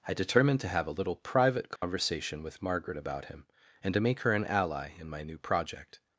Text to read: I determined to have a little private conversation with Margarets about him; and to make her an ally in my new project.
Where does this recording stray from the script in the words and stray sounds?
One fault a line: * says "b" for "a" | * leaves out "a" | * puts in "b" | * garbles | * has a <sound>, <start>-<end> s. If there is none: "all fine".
* has a dropout, 1.8-1.8 s
* says "Margaret" for "Margarets"